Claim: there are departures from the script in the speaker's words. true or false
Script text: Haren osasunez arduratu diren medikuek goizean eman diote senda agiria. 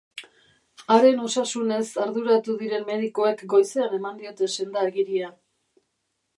false